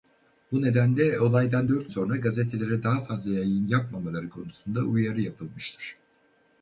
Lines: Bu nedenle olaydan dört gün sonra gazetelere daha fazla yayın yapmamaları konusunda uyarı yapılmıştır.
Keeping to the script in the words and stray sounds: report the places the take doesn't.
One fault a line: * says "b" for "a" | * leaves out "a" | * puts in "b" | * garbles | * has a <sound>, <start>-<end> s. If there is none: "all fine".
* leaves out "gün"